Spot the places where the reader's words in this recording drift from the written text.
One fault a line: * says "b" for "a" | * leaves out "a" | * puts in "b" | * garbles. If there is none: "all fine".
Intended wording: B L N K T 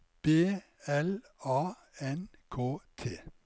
* puts in "A"